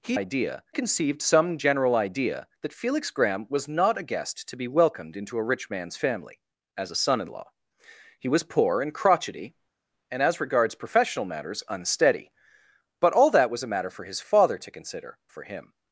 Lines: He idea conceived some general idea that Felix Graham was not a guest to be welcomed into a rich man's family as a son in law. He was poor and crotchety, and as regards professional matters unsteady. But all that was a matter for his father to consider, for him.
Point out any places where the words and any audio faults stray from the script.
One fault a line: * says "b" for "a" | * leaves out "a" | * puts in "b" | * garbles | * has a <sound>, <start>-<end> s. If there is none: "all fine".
all fine